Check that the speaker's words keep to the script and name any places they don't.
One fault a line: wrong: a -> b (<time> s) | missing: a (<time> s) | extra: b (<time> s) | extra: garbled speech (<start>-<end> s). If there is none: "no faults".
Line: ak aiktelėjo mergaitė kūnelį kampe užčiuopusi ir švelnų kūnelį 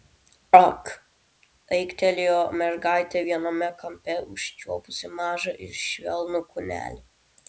wrong: kūnelį -> viename (3.3 s)
extra: mažą (5.2 s)